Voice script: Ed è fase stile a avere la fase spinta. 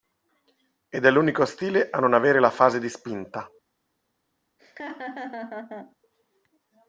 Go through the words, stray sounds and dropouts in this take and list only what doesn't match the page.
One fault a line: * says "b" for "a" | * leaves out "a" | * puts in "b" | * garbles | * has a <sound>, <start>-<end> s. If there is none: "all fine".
* says "l'unico" for "fase"
* puts in "non"
* puts in "di"
* has a laugh, 4.6-6.0 s